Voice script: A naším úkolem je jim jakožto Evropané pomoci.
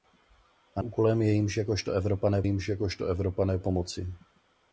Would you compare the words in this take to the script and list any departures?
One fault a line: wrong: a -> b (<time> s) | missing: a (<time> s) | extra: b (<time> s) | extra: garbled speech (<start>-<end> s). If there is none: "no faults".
missing: naším (0.8 s)
extra: jim jakožto Evropané (2.4 s)